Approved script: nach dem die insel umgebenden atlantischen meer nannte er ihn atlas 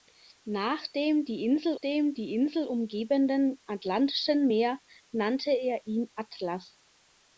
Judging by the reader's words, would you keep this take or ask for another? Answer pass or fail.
fail